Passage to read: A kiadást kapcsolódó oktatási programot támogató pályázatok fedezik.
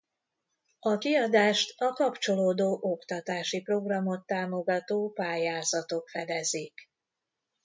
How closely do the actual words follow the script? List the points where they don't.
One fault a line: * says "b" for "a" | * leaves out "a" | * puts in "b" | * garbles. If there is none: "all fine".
* puts in "a"